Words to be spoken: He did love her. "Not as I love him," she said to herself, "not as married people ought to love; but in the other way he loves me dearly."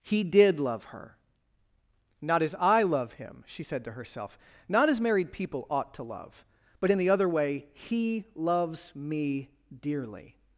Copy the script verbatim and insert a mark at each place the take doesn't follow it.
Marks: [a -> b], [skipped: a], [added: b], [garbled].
He did love her. "Not as I love him," she said to herself, "not as married people ought to love; but in the other way he loves me dearly."